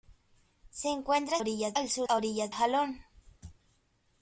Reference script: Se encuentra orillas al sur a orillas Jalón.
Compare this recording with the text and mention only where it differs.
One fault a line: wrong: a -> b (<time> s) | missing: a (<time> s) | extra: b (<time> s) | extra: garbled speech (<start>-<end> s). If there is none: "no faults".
no faults